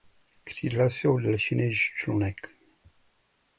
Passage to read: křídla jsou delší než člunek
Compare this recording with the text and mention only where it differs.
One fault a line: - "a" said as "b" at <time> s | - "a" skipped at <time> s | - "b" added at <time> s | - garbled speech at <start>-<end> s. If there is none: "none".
none